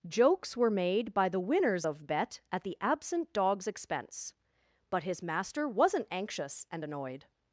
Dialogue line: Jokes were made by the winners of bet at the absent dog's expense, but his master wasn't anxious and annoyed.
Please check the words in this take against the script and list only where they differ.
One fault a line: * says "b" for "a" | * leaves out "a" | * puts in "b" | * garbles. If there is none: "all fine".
all fine